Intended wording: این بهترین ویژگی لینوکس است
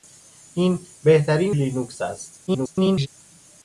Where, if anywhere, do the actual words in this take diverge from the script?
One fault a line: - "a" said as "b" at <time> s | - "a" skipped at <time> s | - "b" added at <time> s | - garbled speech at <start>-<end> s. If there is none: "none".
- "ویژگی" skipped at 1.5 s
- garbled speech at 2.5-3.1 s